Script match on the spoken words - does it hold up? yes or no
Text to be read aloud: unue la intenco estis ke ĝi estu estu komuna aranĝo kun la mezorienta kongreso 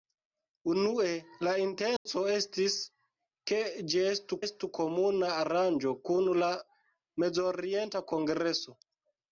yes